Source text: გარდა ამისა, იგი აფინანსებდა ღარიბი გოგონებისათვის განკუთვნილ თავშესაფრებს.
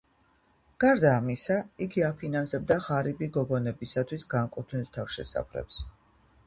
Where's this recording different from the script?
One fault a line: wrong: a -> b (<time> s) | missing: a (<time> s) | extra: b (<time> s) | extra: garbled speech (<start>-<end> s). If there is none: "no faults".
no faults